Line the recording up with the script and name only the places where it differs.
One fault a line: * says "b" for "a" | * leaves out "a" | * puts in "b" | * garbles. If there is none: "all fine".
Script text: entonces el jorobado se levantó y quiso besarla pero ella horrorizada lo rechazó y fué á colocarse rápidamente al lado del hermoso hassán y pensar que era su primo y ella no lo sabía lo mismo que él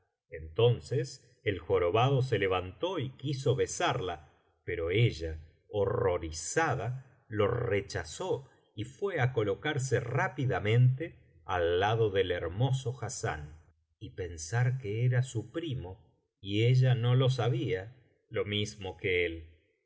all fine